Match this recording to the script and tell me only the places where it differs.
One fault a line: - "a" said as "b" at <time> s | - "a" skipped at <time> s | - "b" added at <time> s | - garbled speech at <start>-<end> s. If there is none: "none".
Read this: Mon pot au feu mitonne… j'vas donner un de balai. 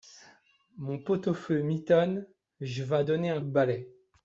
none